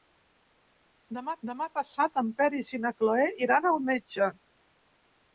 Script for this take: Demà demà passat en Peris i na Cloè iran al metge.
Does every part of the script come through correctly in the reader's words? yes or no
yes